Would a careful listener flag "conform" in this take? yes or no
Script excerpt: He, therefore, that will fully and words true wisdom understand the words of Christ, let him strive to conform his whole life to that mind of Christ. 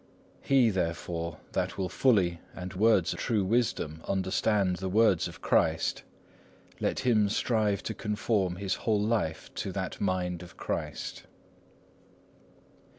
no